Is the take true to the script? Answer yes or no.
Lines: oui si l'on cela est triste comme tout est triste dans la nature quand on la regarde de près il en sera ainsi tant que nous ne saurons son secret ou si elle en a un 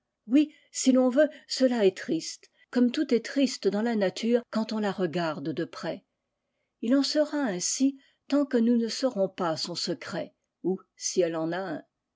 no